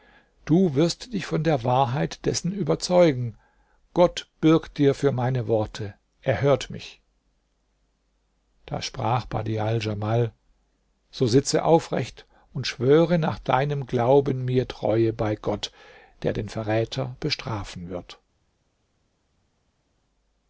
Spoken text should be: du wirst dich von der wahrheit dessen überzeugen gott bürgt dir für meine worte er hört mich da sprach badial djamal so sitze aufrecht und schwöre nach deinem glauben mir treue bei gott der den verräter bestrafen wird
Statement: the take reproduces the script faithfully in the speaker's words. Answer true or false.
true